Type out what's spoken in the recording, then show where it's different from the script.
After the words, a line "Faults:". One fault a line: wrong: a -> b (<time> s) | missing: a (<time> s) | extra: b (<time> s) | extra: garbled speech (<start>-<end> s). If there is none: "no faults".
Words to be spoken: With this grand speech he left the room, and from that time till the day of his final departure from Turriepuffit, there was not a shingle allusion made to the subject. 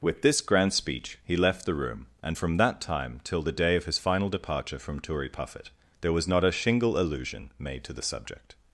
With this grand speech he left the room, and from that time till the day of his final departure from Turriepuffit, there was not a shingle allusion made to the subject.
Faults:
no faults